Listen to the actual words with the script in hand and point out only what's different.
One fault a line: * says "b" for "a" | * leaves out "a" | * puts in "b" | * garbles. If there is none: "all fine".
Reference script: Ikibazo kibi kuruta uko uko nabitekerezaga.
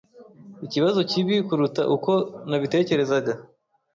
* leaves out "uko"